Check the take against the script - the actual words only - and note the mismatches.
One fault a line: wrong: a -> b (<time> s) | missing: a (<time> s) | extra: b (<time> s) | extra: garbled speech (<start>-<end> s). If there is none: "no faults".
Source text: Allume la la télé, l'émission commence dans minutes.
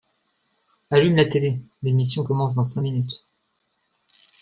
missing: la (1.2 s)
extra: cinq (2.6 s)